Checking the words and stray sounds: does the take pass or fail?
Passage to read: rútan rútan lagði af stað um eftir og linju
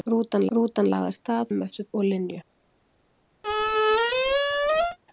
fail